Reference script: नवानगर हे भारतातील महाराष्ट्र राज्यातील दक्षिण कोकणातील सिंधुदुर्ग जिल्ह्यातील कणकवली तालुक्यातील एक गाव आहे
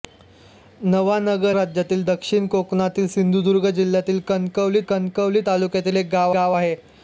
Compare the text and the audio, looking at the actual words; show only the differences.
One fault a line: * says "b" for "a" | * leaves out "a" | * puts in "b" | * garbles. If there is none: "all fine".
* leaves out "हे भारतातील महाराष्ट्र"
* puts in "कणकवली"
* puts in "गाव"